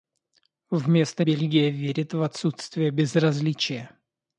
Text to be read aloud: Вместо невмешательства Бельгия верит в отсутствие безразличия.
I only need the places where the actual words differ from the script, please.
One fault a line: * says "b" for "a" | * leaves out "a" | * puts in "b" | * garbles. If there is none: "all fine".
* leaves out "невмешательства"